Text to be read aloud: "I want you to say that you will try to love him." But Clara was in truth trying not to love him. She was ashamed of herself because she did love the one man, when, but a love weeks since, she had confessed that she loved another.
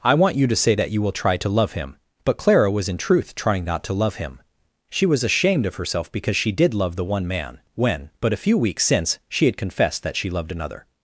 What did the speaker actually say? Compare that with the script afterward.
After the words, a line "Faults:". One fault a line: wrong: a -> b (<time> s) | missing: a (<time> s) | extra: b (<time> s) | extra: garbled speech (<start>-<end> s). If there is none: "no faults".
"I want you to say that you will try to love him." But Clara was in truth trying not to love him. She was ashamed of herself because she did love the one man, when, but a few weeks since, she had confessed that she loved another.
Faults:
wrong: love -> few (8.4 s)